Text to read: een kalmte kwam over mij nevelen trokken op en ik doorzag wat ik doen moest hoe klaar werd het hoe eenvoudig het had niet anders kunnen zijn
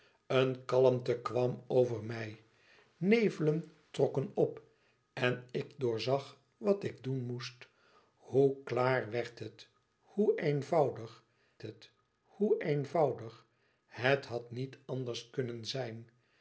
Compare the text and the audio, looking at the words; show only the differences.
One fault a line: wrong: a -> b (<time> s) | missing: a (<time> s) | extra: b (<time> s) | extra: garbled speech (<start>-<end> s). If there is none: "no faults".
extra: hoe eenvoudig het (12.2 s)